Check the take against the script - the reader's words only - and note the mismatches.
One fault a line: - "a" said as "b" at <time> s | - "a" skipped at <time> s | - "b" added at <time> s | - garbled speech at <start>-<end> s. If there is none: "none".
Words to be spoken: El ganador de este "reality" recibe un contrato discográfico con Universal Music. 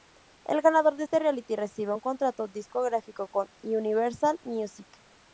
none